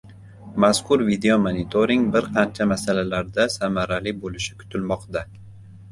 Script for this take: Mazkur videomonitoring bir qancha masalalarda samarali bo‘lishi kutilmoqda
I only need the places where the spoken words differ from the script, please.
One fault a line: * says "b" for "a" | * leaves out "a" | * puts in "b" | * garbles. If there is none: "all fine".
all fine